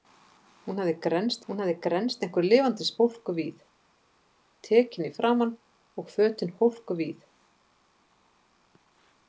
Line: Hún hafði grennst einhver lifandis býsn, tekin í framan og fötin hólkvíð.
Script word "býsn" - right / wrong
wrong